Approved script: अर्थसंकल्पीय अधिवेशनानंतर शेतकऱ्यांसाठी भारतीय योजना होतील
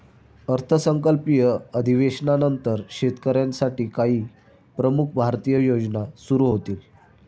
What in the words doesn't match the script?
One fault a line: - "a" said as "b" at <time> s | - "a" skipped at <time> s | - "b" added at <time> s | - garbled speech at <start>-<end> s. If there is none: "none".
- "काही प्रमुख" added at 3.9 s
- "सुरू" added at 6.2 s